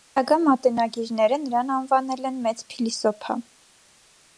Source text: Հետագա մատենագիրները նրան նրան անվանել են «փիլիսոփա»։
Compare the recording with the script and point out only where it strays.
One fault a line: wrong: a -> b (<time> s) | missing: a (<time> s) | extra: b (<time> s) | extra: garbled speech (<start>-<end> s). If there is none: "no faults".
missing: նրան (1.7 s)
extra: մեծ (2.5 s)